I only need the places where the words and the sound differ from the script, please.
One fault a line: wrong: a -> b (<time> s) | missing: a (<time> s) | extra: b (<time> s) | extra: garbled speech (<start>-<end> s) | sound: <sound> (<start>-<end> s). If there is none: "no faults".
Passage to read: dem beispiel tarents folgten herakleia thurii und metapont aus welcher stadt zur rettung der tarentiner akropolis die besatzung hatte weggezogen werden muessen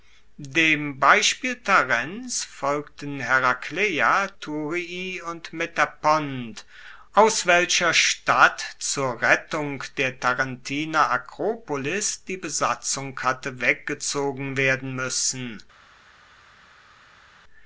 no faults